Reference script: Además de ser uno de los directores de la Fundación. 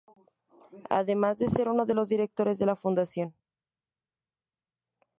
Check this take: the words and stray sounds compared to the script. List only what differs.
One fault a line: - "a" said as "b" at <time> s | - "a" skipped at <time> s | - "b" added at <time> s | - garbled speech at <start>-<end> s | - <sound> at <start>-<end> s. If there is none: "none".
none